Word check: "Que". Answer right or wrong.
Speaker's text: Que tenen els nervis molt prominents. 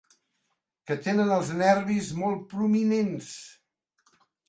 right